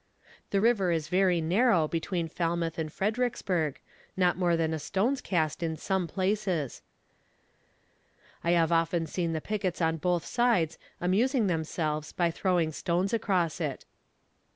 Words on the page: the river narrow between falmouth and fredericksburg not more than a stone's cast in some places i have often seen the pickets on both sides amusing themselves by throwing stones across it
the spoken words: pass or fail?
fail